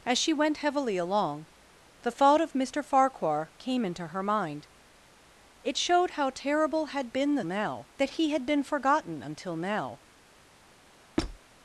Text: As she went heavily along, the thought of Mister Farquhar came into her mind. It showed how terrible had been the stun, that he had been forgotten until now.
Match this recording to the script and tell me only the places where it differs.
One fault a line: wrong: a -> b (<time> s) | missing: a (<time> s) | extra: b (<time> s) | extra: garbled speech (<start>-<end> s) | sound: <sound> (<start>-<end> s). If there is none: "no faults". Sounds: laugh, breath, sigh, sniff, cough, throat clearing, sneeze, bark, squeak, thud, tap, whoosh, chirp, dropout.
wrong: stun -> now (7.4 s)
sound: squeak (11.2-11.4 s)